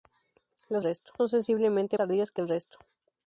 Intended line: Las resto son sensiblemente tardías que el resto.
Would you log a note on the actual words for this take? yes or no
no